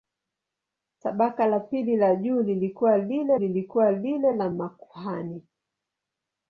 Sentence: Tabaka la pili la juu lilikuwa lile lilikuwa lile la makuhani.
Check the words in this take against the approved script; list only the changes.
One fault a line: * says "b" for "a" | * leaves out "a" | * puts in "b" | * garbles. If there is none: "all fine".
all fine